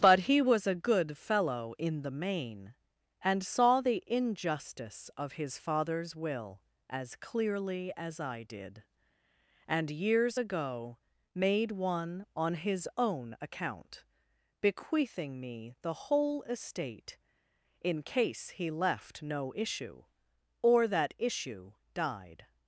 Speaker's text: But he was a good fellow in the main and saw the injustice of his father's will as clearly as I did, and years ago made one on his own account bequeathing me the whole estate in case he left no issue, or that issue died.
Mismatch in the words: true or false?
false